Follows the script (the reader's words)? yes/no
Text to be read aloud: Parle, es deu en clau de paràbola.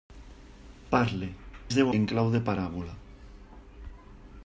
yes